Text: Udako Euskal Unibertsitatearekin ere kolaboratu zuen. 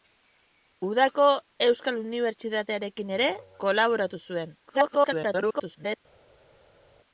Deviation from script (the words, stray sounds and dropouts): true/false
true